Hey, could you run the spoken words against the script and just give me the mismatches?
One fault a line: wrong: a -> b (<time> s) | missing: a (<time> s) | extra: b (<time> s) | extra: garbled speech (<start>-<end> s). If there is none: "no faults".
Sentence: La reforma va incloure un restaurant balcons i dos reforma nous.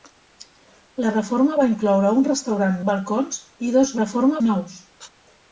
no faults